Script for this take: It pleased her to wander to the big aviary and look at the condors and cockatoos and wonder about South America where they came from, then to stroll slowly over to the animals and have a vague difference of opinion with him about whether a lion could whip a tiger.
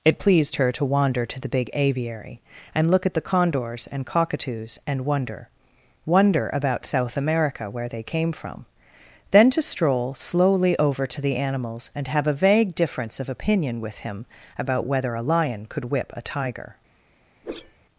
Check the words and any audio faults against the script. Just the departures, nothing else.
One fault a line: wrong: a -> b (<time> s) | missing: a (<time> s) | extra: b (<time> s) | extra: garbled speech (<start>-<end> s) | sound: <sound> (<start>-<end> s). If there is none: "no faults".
extra: wonder (6.1 s)
sound: whoosh (17.4-17.8 s)